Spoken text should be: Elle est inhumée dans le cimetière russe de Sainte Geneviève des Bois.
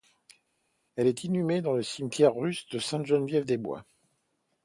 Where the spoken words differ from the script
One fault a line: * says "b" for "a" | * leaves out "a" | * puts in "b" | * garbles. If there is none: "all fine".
all fine